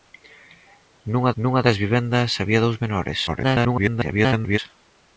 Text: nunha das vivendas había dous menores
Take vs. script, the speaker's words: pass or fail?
fail